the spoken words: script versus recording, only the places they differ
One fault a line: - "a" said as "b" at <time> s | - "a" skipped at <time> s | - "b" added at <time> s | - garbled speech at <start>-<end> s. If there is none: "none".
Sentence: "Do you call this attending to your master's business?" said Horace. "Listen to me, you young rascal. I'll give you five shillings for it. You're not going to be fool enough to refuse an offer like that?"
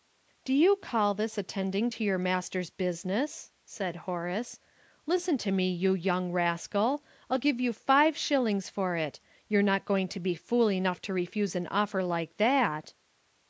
none